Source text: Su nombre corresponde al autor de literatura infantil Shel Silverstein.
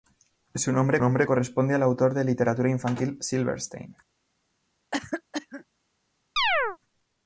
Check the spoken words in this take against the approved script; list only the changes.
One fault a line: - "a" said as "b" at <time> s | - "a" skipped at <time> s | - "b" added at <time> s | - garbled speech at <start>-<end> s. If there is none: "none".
- "nombre" added at 1.0 s
- "Shel" skipped at 3.2 s